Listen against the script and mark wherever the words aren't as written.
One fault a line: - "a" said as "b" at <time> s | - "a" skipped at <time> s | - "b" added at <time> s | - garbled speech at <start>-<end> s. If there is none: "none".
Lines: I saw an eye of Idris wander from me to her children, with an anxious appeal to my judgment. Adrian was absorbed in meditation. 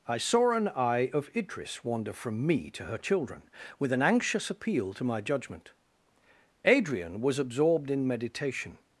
none